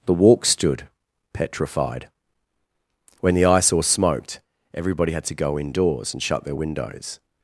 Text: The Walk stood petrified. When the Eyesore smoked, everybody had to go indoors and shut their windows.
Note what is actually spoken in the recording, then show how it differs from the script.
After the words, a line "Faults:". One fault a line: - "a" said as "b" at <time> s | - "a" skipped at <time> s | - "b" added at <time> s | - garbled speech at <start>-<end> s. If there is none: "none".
The Walk stood petrified. When the Eyesore smoked, everybody had to go indoors and shut their windows.
Faults:
none